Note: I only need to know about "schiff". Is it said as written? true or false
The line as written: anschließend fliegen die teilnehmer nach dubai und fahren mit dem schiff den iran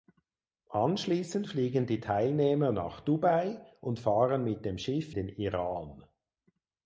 true